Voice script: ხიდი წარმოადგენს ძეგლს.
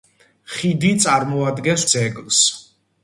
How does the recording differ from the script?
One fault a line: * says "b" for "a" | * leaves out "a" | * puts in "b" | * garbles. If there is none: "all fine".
all fine